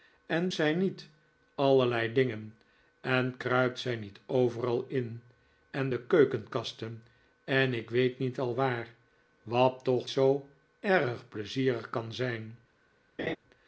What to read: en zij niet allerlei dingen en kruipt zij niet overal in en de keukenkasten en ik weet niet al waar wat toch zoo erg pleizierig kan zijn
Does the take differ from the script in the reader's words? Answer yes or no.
no